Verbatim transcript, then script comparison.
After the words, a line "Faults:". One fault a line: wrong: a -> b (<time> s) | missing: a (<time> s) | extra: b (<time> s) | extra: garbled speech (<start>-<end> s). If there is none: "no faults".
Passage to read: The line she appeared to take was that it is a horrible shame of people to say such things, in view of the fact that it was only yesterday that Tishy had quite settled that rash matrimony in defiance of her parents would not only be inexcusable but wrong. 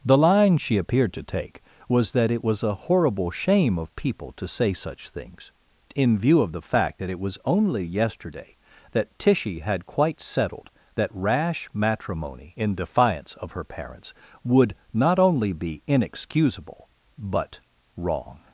The line she appeared to take was that it was a horrible shame of people to say such things, in view of the fact that it was only yesterday that Tishy had quite settled that rash matrimony in defiance of her parents would not only be inexcusable but wrong.
Faults:
wrong: is -> was (2.4 s)